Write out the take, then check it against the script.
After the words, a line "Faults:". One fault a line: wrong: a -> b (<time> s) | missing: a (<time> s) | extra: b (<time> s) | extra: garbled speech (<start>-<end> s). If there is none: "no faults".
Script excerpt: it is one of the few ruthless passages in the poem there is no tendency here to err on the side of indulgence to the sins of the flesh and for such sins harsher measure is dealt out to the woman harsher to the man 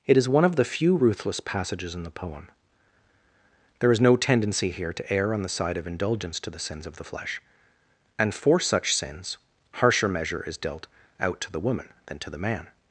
it is one of the few ruthless passages in the poem there is no tendency here to err on the side of indulgence to the sins of the flesh and for such sins harsher measure is dealt out to the woman than to the man
Faults:
wrong: harsher -> than (12.1 s)